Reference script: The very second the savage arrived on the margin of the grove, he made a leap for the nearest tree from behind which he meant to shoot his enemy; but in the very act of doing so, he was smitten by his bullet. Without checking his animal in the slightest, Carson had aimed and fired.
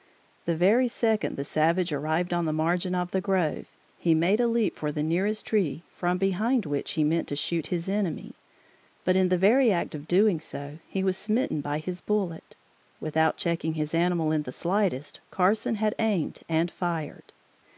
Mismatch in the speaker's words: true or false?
false